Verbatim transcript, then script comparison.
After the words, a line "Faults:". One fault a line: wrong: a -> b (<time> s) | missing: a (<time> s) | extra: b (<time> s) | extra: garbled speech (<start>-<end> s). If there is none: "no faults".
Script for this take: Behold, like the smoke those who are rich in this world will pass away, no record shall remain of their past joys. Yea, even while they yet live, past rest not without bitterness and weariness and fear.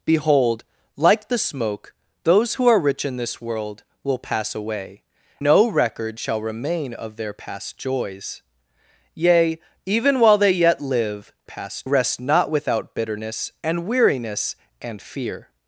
Behold, like the smoke those who are rich in this world will pass away, no record shall remain of their past joys. Yea, even while they yet live, past rest not without bitterness and weariness and fear.
Faults:
no faults